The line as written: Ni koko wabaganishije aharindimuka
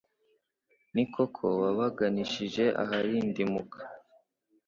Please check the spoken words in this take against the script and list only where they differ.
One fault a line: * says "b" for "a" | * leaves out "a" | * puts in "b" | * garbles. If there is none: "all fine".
all fine